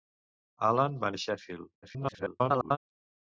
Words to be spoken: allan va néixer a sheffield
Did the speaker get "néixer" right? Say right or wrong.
wrong